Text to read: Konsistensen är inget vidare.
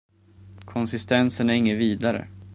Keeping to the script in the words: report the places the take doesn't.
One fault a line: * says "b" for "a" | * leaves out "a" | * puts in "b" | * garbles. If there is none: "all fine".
all fine